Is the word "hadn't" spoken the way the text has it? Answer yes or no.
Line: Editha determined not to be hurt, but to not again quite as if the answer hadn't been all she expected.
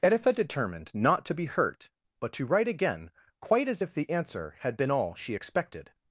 no